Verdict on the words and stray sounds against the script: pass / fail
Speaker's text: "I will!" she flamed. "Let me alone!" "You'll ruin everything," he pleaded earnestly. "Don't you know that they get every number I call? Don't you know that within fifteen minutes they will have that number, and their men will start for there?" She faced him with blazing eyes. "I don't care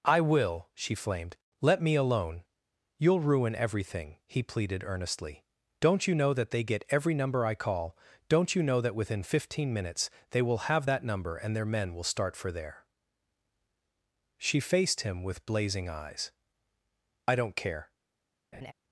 fail